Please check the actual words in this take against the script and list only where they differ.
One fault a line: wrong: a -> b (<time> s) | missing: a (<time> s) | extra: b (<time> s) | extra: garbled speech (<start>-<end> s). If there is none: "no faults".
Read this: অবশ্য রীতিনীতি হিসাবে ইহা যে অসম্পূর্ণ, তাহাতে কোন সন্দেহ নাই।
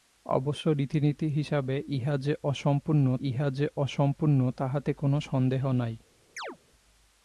extra: ইহা যে অসম্পূর্ণ (3.2 s)